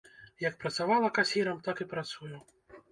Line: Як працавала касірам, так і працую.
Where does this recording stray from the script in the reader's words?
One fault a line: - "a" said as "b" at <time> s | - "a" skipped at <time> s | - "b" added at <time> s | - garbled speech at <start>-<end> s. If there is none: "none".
none